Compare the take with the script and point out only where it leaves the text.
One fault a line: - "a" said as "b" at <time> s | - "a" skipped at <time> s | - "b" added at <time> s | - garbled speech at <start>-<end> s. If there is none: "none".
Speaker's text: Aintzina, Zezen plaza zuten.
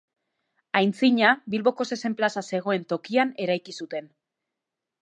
- "Bilboko" added at 1.6 s
- "zegoen tokian eraiki" added at 2.5 s